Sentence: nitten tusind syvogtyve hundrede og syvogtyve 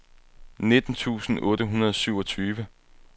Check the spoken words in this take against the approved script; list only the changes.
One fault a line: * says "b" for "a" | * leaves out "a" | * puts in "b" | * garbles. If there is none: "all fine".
* says "otte" for "syvogtyve"